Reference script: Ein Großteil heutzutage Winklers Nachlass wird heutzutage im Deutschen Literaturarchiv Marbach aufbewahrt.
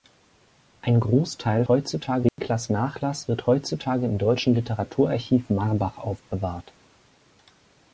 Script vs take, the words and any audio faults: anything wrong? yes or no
yes